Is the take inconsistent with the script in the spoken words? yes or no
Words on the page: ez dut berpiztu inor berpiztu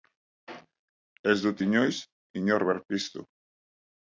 yes